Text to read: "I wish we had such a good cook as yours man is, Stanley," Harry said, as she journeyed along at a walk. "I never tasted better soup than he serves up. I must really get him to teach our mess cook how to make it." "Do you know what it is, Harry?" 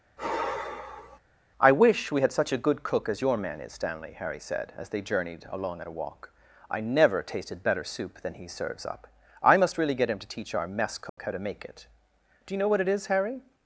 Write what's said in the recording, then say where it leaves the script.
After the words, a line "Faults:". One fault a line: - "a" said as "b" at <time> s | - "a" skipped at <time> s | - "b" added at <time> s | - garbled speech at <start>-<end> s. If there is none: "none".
"I wish we had such a good cook as your man is, Stanley," Harry said, as they journeyed along at a walk. "I never tasted better soup than he serves up. I must really get him to teach our mess cook how to make it." "Do you know what it is, Harry?"
Faults:
- "yours" said as "your" at 3.2 s
- "she" said as "they" at 4.9 s